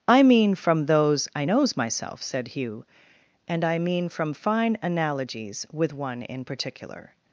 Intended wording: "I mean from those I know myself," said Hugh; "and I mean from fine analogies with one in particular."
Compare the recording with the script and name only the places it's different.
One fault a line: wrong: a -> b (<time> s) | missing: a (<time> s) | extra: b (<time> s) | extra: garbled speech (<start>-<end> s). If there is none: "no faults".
wrong: know -> knows (1.4 s)